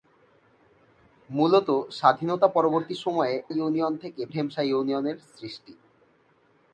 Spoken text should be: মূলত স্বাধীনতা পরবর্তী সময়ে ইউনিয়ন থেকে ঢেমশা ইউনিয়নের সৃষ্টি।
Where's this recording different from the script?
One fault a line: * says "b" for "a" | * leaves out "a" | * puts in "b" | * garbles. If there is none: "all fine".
all fine